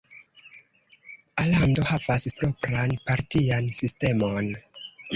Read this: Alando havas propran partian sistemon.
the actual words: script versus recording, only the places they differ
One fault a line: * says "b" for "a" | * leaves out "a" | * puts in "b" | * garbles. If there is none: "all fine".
all fine